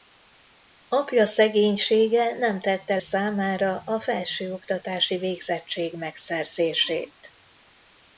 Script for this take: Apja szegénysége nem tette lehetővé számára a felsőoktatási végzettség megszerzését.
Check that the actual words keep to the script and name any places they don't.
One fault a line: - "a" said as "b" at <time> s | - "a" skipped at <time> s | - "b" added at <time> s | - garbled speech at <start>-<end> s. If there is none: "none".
- "lehetővé" skipped at 3.0 s